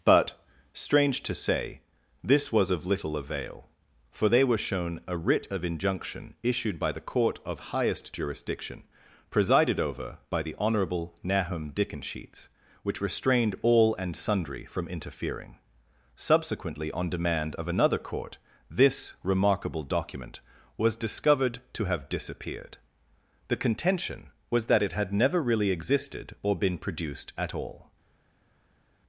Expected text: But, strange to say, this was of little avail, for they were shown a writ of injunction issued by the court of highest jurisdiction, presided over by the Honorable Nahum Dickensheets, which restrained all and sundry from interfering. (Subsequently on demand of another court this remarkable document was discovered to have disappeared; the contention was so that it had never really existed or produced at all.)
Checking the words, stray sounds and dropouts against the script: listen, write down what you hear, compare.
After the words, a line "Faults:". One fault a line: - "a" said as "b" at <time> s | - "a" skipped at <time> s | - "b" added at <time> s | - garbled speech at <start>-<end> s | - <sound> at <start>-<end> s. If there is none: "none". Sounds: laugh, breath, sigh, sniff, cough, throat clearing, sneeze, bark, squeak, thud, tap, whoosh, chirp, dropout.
But, strange to say, this was of little avail, for they were shown a writ of injunction issued by the court of highest jurisdiction, presided over by the Honorable Nahum Dickensheets, which restrained all and sundry from interfering. (Subsequently on demand of another court this remarkable document was discovered to have disappeared; the contention was that it had never really existed or been produced at all.)
Faults:
- "so" skipped at 24.7 s
- "been" added at 26.5 s